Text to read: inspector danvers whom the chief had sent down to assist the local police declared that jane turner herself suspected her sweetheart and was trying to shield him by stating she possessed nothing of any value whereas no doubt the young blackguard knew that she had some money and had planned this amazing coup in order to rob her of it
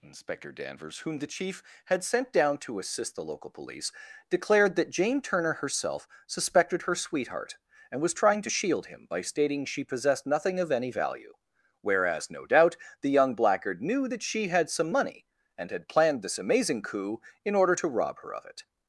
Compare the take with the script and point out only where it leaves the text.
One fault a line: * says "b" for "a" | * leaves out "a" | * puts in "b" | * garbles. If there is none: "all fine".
all fine